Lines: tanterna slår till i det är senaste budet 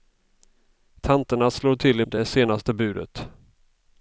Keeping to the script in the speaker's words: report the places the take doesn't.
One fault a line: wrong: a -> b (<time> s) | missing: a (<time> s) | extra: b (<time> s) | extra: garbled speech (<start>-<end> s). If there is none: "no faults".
no faults